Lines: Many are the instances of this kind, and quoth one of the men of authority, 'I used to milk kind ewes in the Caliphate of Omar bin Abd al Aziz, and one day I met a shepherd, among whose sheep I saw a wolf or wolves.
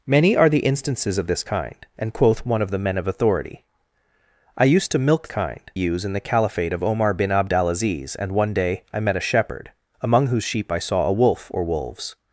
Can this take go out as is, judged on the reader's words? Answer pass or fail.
pass